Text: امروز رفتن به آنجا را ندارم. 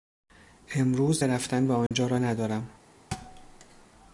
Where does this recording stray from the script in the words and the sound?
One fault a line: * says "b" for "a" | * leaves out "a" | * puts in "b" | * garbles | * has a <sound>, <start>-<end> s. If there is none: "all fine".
* has a dropout, 1.9-1.9 s
* has a thud, 3.1-3.9 s